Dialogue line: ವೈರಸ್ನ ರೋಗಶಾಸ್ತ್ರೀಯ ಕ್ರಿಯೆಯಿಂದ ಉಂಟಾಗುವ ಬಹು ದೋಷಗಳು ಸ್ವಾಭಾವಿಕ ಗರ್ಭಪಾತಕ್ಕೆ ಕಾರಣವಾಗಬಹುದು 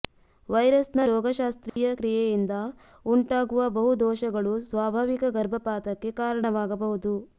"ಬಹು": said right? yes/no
yes